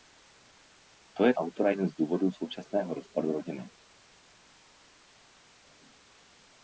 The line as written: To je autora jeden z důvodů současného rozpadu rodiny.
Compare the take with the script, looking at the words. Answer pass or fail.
pass